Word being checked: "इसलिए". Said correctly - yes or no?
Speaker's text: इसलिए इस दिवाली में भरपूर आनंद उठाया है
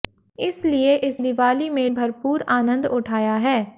yes